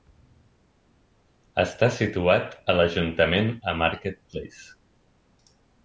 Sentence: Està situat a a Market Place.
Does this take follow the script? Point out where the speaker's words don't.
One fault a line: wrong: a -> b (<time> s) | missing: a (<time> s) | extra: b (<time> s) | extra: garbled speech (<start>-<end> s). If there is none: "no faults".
extra: l"ajuntament (2.8 s)